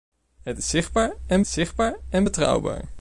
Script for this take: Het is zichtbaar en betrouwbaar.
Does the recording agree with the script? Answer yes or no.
no